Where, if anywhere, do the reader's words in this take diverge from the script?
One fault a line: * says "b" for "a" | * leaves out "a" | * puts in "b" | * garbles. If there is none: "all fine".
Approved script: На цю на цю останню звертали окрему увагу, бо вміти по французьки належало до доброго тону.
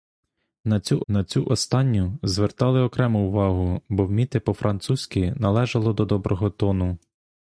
all fine